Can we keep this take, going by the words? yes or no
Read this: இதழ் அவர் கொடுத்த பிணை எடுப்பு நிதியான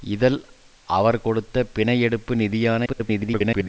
no